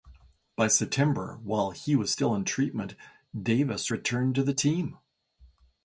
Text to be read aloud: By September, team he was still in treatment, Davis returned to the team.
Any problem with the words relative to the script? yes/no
yes